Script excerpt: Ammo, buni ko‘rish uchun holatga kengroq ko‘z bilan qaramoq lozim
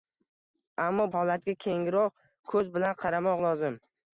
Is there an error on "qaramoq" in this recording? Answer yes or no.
no